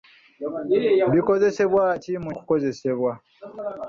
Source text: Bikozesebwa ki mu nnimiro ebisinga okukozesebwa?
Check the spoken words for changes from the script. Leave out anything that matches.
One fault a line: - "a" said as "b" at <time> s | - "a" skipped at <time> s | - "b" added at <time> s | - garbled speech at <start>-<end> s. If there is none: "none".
- "nnimiro ebisinga" skipped at 2.3 s